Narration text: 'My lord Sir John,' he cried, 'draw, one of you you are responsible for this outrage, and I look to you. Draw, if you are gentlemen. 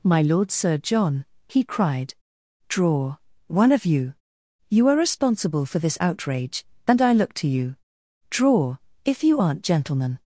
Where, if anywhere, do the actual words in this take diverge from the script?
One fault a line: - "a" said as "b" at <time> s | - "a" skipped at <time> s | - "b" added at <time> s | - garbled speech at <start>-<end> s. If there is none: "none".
- "are" said as "aren't" at 9.4 s